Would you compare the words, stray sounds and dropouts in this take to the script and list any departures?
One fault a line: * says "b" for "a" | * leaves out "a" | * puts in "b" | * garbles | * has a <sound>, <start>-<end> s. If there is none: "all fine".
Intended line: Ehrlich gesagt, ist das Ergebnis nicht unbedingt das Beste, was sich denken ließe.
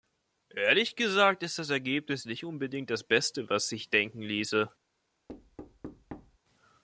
* has a thud, 5.3-6.4 s